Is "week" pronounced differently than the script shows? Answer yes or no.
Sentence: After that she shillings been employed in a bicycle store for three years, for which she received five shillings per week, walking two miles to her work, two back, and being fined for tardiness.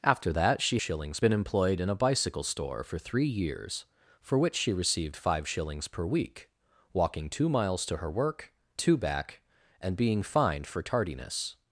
no